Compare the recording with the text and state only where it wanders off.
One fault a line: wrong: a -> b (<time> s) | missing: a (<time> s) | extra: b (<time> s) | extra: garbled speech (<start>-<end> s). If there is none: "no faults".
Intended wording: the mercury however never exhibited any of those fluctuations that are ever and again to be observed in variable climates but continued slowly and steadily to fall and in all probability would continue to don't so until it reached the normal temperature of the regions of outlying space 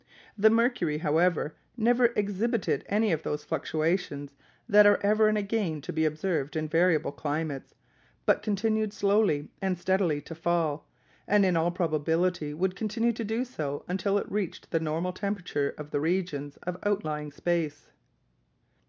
wrong: don't -> do (13.2 s)